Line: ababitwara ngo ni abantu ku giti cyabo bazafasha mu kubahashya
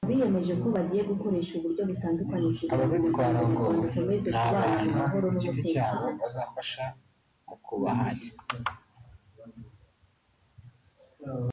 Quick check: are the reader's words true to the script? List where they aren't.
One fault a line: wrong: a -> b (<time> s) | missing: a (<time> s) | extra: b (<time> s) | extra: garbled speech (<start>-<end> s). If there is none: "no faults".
no faults